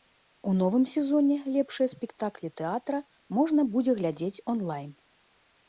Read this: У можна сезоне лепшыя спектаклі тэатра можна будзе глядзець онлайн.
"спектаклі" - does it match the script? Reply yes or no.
yes